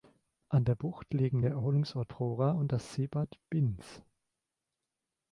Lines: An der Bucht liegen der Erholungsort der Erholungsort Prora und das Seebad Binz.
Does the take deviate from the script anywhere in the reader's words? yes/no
yes